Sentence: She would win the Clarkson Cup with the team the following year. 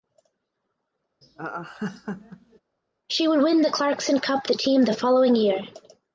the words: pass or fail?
fail